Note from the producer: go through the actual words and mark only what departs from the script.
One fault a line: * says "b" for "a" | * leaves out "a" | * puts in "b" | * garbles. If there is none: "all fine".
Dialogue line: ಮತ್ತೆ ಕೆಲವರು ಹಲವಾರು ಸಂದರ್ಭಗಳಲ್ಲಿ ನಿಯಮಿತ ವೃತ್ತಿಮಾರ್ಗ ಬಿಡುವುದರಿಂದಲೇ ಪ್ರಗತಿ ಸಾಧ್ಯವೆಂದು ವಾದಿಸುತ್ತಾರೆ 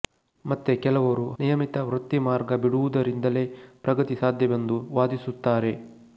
* leaves out "ಹಲವಾರು ಸಂದರ್ಭಗಳಲ್ಲಿ"